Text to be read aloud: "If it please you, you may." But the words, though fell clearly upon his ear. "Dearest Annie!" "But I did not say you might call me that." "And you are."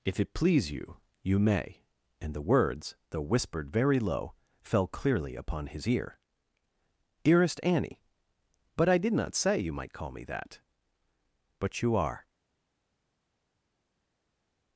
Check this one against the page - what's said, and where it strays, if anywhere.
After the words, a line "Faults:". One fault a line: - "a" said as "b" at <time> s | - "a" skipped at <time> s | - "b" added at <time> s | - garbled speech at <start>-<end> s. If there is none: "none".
"If it please you, you may." And the words, though whispered very low, fell clearly upon his ear. "Dearest Annie!" "But I did not say you might call me that." "But you are."
Faults:
- "But" said as "And" at 2.2 s
- "whispered very low" added at 3.3 s
- "And" said as "But" at 11.6 s